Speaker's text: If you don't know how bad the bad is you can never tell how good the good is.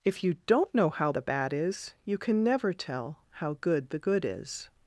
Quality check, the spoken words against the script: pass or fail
fail